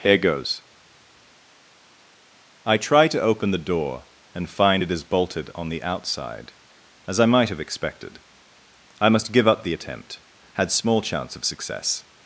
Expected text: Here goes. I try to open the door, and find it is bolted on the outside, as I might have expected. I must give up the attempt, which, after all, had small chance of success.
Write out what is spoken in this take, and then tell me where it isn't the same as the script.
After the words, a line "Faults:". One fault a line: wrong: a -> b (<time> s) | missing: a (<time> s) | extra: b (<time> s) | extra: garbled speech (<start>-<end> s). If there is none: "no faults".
Here goes. I try to open the door, and find it is bolted on the outside, as I might have expected. I must give up the attempt, had small chance of success.
Faults:
missing: which after all (10.2 s)